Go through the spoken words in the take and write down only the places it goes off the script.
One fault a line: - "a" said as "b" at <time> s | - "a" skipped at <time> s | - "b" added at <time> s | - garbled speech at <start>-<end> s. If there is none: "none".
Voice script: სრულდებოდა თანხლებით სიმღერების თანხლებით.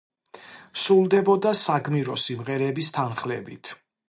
- "თანხლებით" said as "საგმირო" at 1.6 s